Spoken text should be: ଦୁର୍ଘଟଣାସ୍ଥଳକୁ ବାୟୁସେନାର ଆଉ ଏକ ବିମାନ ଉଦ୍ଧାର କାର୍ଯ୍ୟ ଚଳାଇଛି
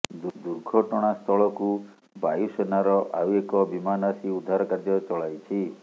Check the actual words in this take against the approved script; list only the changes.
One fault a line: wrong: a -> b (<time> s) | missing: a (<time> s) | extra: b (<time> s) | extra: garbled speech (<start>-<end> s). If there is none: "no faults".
extra: ଆସି (4.1 s)